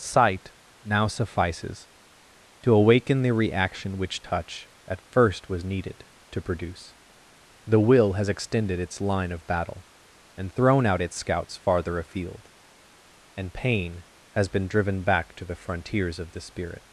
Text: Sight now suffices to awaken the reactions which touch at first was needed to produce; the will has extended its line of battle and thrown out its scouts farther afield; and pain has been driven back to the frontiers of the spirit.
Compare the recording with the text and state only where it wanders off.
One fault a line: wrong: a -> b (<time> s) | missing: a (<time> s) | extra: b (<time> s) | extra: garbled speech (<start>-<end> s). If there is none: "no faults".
wrong: reactions -> reaction (3.3 s)